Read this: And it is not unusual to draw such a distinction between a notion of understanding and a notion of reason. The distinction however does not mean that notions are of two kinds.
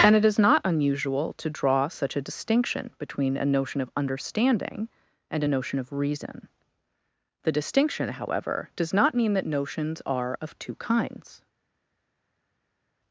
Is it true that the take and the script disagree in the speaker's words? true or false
false